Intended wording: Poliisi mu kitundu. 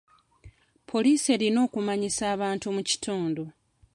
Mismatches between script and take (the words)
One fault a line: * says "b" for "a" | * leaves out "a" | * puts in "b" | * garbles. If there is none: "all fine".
* puts in "erina okumanyisa abantu"